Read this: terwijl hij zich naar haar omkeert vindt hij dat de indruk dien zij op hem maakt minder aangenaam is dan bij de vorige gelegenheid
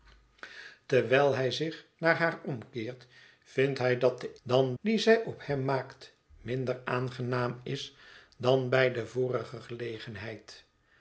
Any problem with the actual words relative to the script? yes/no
yes